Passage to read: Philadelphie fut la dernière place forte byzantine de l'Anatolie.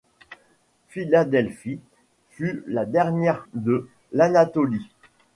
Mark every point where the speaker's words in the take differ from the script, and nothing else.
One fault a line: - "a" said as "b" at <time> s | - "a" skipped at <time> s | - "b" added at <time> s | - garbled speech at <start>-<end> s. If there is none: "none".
- "place forte byzantine" skipped at 3.4 s